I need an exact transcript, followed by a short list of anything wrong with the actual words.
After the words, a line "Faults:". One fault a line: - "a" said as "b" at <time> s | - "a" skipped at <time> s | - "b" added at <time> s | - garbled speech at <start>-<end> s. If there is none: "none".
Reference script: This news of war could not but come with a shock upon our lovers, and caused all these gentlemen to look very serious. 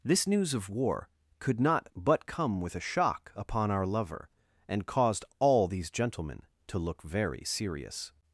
This news of war could not but come with a shock upon our lover, and caused all these gentlemen to look very serious.
Faults:
- "lovers" said as "lover" at 3.9 s